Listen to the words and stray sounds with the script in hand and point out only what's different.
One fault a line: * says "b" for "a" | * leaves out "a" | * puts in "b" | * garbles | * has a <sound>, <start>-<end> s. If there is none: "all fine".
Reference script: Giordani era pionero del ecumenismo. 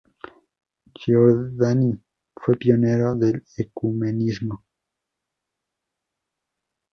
* says "fue" for "era"